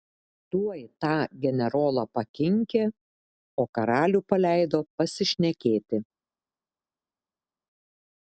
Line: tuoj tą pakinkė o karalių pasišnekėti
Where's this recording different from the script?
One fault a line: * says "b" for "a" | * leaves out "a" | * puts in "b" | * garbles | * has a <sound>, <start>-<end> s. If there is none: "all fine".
* puts in "generolą"
* puts in "paleido"